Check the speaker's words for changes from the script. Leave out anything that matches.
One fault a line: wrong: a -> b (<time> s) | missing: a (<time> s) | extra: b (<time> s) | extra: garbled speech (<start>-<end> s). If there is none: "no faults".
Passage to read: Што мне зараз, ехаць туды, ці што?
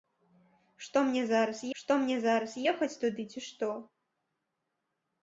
extra: што мне зараз (1.8 s)